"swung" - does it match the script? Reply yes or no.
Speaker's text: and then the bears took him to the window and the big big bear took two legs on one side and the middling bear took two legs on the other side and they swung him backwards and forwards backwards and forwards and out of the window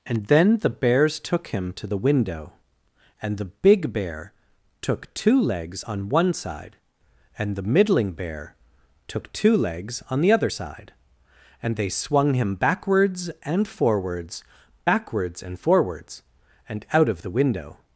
yes